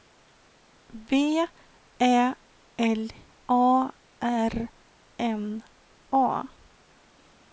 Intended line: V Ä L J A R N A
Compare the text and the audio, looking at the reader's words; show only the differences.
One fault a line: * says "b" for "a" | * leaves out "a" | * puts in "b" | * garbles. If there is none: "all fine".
* leaves out "J"